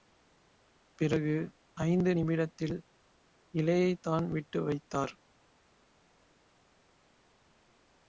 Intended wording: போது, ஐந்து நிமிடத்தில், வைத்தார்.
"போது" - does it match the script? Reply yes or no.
no